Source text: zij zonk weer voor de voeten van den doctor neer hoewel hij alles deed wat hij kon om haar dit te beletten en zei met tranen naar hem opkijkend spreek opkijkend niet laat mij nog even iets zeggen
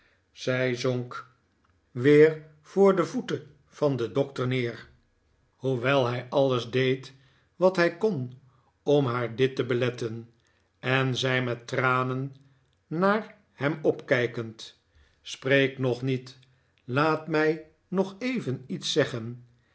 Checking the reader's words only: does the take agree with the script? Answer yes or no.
no